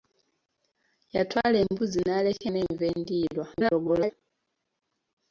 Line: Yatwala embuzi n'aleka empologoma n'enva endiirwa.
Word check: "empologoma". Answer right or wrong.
wrong